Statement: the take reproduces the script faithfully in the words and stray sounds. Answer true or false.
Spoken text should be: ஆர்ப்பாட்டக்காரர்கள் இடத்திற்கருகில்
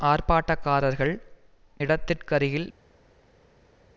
true